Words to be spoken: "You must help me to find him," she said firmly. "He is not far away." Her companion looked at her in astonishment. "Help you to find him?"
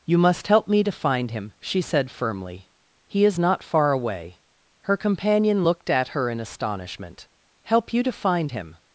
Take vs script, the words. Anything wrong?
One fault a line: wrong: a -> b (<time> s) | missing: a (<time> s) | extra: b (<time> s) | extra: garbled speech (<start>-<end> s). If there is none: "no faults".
no faults